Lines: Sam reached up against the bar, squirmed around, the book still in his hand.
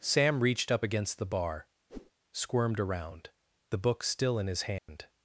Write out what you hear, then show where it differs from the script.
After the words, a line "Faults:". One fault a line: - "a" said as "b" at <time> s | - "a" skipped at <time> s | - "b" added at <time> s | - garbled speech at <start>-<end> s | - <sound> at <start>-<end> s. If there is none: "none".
Sam reached up against the bar, squirmed around, the book still in his hand.
Faults:
- whoosh at 1.9-2.1 s
- dropout at 4.8-4.9 s